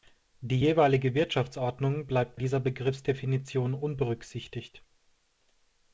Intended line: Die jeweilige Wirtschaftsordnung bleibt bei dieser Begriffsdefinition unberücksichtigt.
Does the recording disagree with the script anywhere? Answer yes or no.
yes